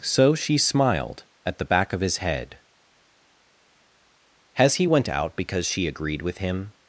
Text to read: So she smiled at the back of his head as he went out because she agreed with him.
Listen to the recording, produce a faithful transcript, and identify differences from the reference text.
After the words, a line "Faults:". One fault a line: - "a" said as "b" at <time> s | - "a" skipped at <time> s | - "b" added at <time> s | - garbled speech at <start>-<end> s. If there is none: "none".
So she smiled at the back of his head has he went out because she agreed with him.
Faults:
- "as" said as "has" at 4.5 s